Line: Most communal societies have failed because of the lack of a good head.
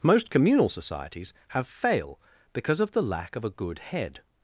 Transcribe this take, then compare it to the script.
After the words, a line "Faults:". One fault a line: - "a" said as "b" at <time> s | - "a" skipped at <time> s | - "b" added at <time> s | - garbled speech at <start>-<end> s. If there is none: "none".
Most communal societies have fail because of the lack of a good head.
Faults:
- "failed" said as "fail" at 1.7 s